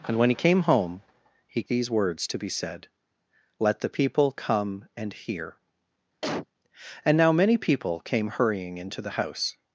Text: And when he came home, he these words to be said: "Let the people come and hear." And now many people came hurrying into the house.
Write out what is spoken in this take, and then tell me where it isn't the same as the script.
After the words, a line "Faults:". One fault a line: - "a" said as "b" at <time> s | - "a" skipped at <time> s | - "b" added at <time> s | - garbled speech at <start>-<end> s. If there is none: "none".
And when he came home, he these words to be said: "Let the people come and hear." And now many people came hurrying into the house.
Faults:
none